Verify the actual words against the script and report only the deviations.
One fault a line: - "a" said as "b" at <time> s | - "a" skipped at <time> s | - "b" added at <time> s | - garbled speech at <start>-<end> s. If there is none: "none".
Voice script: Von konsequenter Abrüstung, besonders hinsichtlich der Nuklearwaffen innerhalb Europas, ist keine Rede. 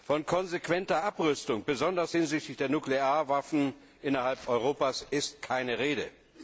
none